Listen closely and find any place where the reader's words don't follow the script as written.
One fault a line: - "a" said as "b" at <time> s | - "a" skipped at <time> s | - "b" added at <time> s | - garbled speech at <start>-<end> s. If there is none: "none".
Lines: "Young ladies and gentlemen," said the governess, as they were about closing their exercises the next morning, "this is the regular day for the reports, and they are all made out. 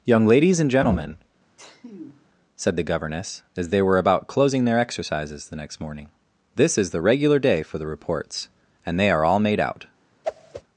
none